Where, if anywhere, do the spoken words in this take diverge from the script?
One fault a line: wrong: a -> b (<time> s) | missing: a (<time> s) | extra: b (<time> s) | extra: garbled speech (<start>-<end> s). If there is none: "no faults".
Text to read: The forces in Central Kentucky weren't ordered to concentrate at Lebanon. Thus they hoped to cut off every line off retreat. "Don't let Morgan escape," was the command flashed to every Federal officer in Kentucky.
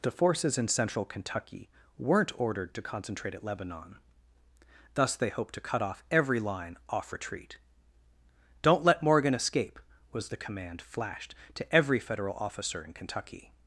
no faults